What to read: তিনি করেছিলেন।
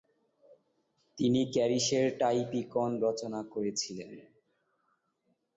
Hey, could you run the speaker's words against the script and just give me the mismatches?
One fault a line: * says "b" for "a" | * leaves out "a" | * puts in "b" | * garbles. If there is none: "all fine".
* puts in "ক্যারিসের টাইপিকন রচনা"